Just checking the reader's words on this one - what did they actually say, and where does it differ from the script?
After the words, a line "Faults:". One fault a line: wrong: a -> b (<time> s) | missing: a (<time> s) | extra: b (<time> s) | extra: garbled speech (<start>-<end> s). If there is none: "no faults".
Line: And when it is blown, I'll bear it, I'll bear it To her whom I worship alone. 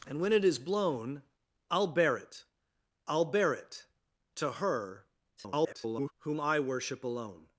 And when it is blown, I'll bear it, I'll bear it To her [garbled] whom I worship alone.
Faults:
extra: garbled speech (5.4-6.1 s)